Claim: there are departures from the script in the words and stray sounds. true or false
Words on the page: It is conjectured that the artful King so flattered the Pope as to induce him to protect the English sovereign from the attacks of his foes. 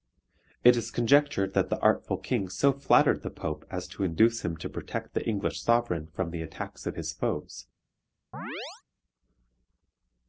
true